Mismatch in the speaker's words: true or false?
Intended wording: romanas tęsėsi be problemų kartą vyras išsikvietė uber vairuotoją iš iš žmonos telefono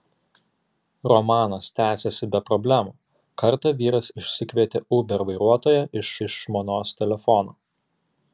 false